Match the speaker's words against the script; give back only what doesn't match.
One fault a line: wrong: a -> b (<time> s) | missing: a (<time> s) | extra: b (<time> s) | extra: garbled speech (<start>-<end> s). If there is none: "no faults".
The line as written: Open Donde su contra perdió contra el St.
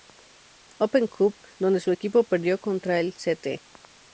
extra: Cup (1.1 s)
wrong: contra -> equipo (1.9 s)